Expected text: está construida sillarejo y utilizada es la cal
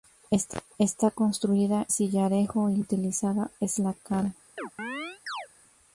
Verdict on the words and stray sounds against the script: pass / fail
fail